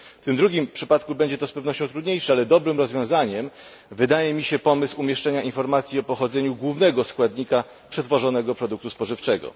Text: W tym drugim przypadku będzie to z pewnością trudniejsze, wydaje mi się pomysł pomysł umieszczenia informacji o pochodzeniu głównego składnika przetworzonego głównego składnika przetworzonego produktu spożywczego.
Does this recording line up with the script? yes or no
no